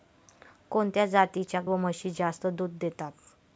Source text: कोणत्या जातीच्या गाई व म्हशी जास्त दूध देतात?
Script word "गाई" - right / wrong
wrong